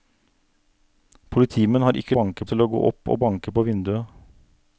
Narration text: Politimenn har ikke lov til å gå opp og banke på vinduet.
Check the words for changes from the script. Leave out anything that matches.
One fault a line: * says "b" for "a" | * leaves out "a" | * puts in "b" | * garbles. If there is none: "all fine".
* says "banke" for "lov"